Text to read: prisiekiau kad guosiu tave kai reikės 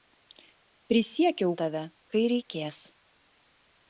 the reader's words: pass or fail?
fail